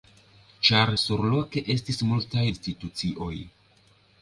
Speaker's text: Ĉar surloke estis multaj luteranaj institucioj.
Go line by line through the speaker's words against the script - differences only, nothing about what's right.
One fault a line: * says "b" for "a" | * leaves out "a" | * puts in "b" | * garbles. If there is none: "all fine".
* leaves out "luteranaj"